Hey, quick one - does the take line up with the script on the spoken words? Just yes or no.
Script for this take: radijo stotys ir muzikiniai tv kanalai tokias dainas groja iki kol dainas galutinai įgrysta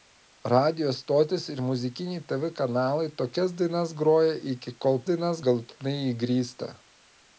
yes